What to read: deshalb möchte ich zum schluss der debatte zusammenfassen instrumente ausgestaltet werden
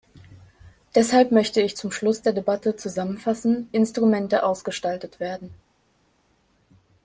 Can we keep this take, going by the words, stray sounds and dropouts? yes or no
yes